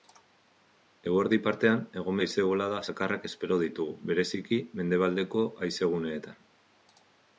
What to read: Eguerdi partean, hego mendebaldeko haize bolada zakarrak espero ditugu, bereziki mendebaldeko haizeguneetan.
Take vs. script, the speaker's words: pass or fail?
fail